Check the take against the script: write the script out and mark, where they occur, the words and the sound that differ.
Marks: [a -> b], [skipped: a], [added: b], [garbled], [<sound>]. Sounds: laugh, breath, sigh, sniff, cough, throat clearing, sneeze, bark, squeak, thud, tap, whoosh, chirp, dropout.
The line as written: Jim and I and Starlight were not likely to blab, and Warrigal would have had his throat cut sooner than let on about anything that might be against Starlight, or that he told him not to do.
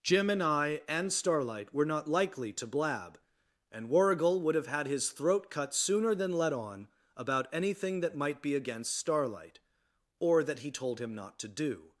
Jim and I and Starlight were not likely to blab, and Warrigal would have had his throat cut sooner than let on about anything that might be against Starlight, or that he told him not to do.